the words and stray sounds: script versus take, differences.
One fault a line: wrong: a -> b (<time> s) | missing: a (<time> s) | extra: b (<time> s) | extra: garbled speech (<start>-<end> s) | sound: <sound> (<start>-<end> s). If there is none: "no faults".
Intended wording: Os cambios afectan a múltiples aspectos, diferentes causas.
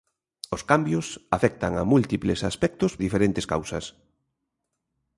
no faults